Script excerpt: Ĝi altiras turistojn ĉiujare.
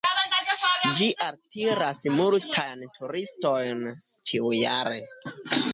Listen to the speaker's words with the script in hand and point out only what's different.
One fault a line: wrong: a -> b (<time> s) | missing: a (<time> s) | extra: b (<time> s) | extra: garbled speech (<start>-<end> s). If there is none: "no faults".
extra: multajn (2.1 s)